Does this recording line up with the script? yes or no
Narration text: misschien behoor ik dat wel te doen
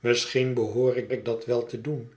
no